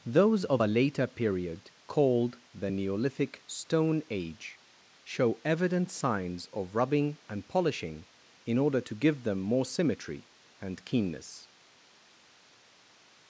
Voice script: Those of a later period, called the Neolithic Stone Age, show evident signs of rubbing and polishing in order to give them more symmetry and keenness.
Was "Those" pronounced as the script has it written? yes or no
yes